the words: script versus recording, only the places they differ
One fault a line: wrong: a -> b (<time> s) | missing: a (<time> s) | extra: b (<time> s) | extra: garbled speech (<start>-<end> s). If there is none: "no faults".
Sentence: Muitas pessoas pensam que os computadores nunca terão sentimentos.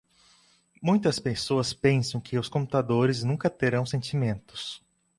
no faults